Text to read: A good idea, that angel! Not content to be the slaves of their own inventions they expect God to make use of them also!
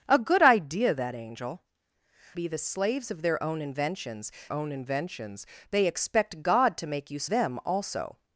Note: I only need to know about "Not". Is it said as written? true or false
false